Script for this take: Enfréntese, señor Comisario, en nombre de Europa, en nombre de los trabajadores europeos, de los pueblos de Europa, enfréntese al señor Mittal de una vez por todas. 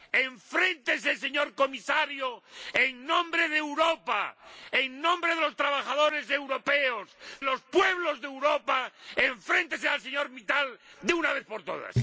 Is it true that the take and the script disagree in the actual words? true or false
true